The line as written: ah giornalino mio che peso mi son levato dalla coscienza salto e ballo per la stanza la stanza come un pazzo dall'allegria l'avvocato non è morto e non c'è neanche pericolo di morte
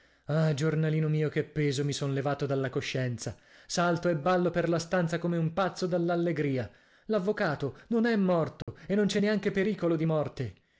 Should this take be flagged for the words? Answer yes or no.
yes